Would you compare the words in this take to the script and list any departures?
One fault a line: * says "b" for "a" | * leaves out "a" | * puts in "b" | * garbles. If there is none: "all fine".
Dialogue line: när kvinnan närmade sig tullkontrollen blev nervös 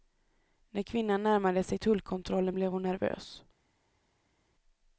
* puts in "hon"